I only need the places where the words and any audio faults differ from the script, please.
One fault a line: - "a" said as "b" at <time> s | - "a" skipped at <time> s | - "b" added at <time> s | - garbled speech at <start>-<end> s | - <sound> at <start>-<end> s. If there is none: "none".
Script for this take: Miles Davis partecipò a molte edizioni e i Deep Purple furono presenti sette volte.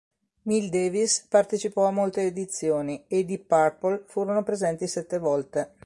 none